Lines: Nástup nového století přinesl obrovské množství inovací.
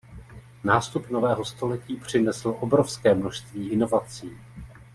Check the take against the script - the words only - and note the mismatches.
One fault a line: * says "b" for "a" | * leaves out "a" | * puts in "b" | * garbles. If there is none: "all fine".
all fine